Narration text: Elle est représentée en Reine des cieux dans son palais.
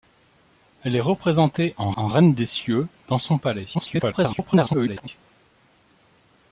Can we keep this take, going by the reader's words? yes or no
no